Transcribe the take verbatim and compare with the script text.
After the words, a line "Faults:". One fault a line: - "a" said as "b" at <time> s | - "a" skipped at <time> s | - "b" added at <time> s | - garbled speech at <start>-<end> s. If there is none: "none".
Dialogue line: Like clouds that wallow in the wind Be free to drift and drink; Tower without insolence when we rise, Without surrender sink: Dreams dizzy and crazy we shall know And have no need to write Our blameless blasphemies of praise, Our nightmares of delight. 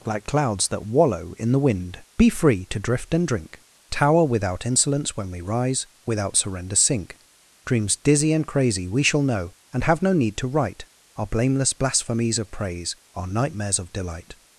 Like clouds that wallow in the wind Be free to drift and drink; Tower without insolence when we rise, Without surrender sink: Dreams dizzy and crazy we shall know And have no need to write Our blameless blasphemies of praise, Our nightmares of delight.
Faults:
none